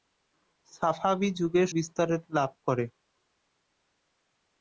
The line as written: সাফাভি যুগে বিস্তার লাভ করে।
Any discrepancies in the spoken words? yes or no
no